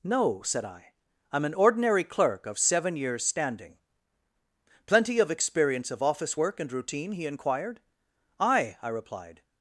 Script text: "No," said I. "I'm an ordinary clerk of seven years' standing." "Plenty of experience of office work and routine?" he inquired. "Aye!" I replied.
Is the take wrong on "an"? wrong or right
right